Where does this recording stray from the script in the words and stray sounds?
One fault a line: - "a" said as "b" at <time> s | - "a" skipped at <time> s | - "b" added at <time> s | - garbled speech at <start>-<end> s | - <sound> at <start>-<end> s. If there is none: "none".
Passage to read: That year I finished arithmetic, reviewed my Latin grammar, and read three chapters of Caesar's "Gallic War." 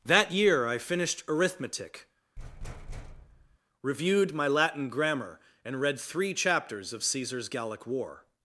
- thud at 2.4-3.6 s